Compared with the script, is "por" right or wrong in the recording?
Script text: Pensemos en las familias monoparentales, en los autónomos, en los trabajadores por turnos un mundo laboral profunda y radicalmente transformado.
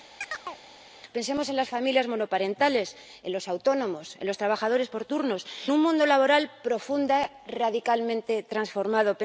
right